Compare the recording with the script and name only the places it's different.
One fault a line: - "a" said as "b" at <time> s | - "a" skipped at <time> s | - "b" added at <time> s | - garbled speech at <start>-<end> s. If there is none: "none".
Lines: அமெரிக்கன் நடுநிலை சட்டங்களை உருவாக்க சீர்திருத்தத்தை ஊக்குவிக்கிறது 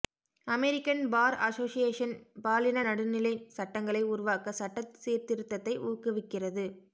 - "பார் அசோசியேஷன் பாலின" added at 1.1 s
- "சட்ட" added at 4.5 s